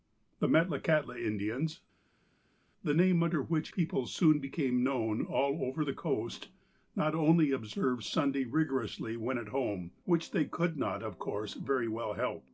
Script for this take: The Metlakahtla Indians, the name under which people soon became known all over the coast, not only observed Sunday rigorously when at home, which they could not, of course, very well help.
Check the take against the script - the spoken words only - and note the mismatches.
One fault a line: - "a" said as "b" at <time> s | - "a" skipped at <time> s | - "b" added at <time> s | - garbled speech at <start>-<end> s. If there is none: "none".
none